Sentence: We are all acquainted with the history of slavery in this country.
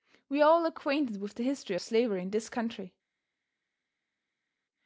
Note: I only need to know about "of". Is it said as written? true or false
false